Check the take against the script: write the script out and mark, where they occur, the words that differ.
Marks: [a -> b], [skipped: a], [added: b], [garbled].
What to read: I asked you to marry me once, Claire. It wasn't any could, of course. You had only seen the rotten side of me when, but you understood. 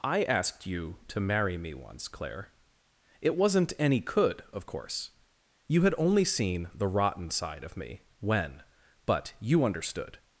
I asked you to marry me once, Claire. It wasn't any could, of course. You had only seen the rotten side of me when, but you understood.